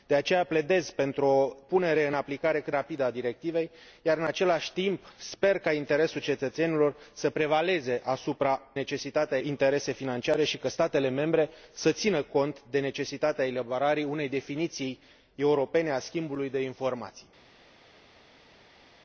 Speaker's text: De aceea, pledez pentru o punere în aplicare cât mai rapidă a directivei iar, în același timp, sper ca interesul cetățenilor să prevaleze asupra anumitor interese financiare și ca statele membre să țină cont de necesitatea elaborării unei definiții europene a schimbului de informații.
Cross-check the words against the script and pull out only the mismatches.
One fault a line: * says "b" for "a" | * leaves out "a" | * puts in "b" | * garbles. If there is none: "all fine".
* leaves out "mai"
* says "necesitatea" for "anumitor"